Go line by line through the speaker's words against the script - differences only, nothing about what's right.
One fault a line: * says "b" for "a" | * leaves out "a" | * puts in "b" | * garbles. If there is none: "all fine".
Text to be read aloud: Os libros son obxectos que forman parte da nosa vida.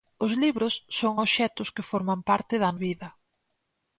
* leaves out "nosa"